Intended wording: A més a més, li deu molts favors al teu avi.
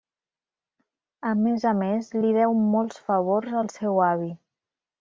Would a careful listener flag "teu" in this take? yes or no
yes